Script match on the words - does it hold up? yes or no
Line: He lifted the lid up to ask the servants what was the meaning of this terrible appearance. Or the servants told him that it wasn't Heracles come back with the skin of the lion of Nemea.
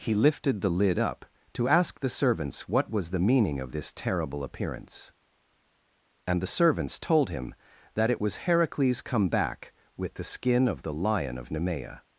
no